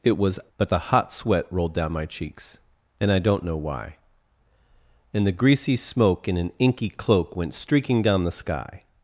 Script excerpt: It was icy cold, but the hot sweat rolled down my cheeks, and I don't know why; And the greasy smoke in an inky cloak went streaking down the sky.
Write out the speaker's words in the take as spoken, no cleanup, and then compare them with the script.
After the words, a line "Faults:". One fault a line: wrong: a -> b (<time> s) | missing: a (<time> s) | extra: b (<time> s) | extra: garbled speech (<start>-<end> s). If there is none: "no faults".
It was but the hot sweat rolled down my cheeks, and I don't know why; And the greasy smoke in an inky cloak went streaking down the sky.
Faults:
missing: icy cold (0.4 s)